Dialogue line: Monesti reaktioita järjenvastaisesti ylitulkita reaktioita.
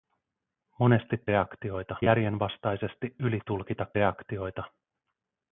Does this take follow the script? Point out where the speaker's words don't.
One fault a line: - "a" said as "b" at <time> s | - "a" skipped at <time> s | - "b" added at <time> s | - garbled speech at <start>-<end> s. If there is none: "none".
none